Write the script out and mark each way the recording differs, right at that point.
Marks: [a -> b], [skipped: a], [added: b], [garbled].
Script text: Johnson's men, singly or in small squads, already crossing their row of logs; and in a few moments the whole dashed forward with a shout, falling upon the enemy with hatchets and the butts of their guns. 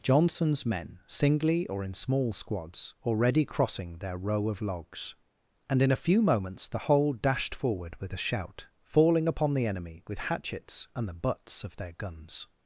Johnson's men, singly or in small squads, already crossing their row of logs; and in a few moments the whole dashed forward with a shout, falling upon the enemy with hatchets and the butts of their guns.